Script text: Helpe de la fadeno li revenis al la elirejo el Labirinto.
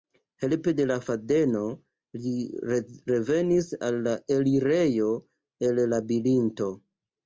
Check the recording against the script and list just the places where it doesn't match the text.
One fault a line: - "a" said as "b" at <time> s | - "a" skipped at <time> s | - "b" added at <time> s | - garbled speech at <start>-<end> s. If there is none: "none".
none